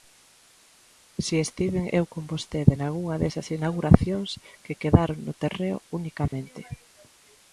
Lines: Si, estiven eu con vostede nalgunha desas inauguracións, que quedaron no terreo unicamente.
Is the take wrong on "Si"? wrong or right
right